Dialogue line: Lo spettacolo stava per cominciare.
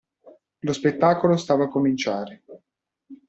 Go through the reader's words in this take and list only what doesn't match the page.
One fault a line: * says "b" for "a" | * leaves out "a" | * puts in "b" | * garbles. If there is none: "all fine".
* leaves out "per"